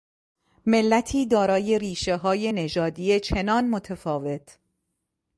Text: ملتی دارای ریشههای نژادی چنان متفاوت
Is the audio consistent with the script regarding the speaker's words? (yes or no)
yes